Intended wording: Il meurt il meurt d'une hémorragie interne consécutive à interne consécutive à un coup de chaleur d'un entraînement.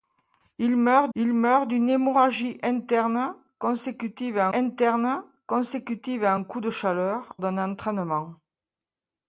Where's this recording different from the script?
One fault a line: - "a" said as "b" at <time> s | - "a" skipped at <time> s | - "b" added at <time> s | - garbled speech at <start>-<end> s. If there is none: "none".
none